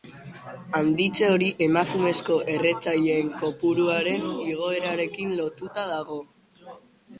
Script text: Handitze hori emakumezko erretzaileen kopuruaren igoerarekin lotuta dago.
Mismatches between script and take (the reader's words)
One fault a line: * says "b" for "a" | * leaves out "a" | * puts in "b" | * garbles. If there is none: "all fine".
all fine